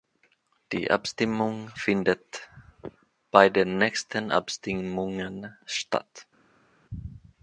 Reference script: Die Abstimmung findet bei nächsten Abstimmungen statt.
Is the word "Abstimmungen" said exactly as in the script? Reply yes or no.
yes